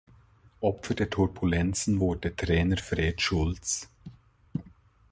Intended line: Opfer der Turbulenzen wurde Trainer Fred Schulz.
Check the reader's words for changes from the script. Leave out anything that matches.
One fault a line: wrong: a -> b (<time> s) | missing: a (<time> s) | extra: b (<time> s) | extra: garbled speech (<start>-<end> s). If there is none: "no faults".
no faults